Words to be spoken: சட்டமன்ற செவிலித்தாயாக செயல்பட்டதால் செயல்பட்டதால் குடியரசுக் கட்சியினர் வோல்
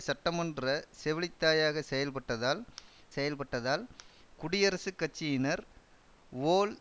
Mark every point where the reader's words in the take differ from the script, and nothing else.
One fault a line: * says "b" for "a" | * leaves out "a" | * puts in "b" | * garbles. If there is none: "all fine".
all fine